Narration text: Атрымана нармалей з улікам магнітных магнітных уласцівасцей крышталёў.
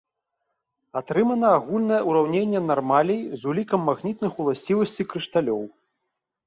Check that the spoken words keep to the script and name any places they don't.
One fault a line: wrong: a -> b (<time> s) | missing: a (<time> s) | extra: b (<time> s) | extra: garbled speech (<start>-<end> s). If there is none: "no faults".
extra: агульнае ўраўненне (1.6 s)
missing: магнітных (4.3 s)